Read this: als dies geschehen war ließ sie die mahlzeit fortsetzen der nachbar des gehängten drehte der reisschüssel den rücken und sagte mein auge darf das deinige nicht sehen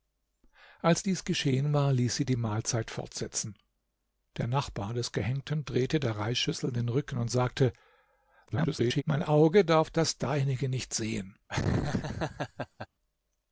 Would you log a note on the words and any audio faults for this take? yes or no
yes